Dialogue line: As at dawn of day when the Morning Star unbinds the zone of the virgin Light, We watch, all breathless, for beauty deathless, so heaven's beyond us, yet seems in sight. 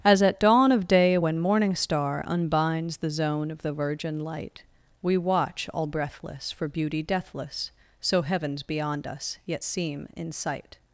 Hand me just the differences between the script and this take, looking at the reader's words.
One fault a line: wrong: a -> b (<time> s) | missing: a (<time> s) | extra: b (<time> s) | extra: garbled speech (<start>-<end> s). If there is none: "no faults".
missing: the (1.4 s)
wrong: seems -> seem (9.6 s)